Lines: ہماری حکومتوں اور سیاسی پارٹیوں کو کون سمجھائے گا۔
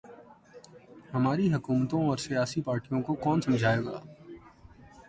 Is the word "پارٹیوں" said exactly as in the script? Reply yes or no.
yes